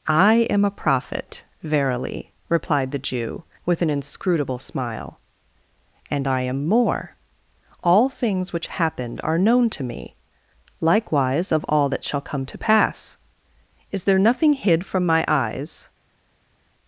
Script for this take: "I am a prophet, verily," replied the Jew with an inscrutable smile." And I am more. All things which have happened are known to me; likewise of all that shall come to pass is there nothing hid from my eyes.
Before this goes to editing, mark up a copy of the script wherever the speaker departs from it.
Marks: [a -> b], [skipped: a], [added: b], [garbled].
"I am a prophet, verily," replied the Jew with an inscrutable smile." And I am more. All things which [skipped: have] happened are known to me; likewise of all that shall come to pass is there nothing hid from my eyes.